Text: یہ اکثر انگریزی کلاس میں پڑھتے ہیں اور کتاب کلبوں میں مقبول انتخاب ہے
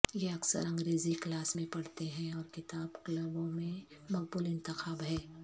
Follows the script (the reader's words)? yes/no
yes